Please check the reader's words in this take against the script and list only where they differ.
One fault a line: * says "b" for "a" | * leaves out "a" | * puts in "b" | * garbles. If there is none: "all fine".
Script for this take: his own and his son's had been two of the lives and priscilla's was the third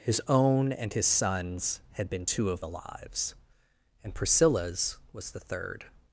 all fine